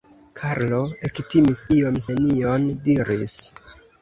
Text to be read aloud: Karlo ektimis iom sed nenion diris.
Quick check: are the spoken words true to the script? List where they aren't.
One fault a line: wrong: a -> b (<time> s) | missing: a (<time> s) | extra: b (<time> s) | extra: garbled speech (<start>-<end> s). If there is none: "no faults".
missing: sed (2.0 s)